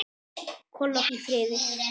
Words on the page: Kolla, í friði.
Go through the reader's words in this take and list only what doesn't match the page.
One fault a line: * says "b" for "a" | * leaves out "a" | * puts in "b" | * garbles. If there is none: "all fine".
all fine